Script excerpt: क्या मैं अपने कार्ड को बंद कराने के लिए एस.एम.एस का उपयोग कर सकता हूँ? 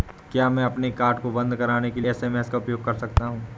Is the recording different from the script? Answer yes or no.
yes